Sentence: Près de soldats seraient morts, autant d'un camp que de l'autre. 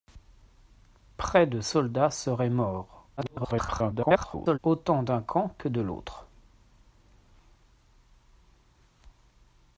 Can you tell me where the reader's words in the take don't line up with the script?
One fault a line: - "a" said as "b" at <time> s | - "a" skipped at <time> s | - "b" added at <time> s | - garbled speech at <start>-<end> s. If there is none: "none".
- garbled speech at 3.2-4.6 s